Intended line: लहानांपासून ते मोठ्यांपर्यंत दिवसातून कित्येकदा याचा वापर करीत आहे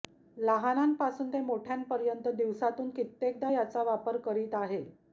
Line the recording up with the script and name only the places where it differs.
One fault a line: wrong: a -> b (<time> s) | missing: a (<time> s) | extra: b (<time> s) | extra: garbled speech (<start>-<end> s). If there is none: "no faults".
no faults